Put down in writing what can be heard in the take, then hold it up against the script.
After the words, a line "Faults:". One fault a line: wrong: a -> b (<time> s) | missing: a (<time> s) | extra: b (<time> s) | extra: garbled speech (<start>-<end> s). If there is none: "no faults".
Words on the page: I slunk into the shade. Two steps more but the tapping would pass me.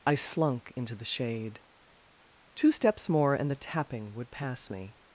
I slunk into the shade. Two steps more and the tapping would pass me.
Faults:
wrong: but -> and (3.3 s)